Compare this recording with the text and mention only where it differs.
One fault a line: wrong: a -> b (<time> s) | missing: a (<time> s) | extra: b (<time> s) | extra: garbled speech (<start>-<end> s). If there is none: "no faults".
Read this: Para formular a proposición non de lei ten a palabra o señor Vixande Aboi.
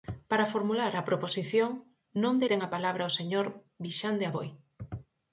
missing: lei (2.5 s)